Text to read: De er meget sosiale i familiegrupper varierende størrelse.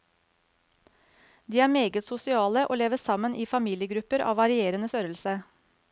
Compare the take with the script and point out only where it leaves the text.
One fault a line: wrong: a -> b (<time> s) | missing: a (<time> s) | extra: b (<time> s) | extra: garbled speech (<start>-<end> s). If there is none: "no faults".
extra: og lever sammen (2.7 s)
extra: av (4.3 s)